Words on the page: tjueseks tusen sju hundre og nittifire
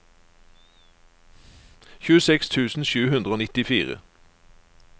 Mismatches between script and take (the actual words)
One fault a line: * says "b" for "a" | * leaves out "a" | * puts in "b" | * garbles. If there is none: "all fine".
all fine